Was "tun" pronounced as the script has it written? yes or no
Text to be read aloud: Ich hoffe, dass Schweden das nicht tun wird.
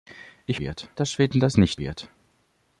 no